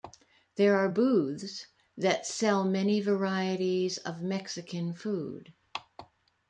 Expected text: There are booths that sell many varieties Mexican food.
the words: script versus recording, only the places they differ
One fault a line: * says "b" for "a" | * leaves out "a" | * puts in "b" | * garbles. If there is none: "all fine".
* puts in "of"